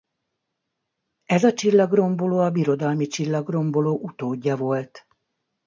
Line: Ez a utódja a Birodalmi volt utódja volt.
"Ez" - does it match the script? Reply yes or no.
yes